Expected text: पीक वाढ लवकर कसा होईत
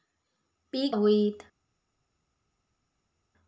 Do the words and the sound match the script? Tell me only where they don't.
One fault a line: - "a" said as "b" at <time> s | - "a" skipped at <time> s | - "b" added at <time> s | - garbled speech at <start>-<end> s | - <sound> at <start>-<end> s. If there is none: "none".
- "वाढ लवकर कसा" skipped at 1.0 s